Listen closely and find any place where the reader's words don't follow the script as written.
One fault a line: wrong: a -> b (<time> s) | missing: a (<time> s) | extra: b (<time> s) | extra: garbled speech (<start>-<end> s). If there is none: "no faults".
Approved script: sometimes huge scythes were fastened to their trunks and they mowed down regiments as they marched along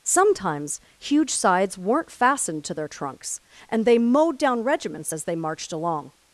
wrong: were -> weren't (1.8 s)